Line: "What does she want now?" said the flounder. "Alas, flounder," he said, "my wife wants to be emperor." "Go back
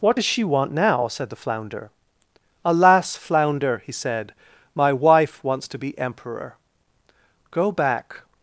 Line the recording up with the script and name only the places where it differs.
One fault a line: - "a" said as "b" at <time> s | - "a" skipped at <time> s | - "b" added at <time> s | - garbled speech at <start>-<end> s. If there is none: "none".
none